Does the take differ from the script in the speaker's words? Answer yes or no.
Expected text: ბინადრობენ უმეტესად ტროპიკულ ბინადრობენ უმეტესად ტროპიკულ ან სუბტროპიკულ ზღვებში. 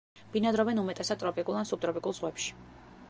yes